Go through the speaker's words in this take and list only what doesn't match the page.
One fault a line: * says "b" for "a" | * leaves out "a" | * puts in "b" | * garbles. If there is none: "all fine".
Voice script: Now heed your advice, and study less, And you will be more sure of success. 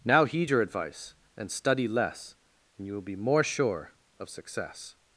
all fine